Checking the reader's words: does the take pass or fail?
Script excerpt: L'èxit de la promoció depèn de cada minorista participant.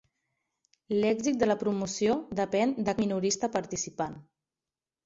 fail